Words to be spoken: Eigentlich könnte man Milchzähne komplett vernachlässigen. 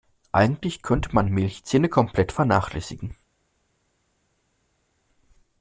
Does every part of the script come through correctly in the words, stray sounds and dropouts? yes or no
yes